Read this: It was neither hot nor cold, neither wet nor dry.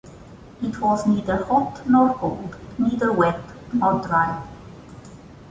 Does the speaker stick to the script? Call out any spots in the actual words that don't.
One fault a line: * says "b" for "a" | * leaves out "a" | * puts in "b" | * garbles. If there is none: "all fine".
all fine